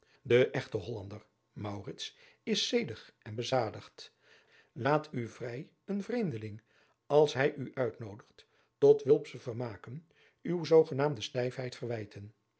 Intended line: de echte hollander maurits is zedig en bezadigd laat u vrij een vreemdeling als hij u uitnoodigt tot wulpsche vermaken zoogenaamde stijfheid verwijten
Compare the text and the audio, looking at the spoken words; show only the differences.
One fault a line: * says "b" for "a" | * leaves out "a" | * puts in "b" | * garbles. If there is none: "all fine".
* puts in "uwe"